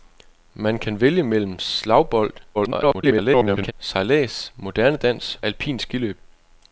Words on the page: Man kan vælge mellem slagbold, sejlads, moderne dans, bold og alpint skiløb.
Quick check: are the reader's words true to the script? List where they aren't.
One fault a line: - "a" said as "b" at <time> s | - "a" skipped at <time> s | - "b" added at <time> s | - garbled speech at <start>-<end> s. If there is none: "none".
- garbled speech at 2.5-3.7 s
- "bold og" skipped at 5.4 s